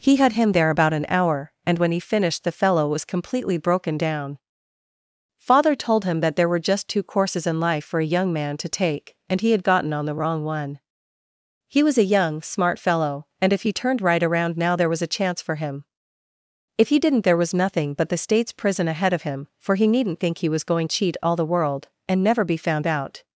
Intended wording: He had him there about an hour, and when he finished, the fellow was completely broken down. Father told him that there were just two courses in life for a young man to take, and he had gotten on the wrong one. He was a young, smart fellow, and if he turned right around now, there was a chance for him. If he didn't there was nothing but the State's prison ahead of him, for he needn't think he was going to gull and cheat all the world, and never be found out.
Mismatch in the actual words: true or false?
true